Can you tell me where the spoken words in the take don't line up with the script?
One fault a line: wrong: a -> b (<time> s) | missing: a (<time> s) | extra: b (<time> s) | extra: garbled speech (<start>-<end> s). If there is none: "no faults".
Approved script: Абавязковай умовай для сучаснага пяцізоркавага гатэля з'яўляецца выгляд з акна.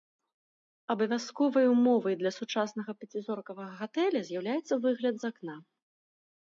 no faults